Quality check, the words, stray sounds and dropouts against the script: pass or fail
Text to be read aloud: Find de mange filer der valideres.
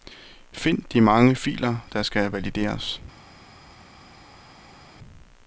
fail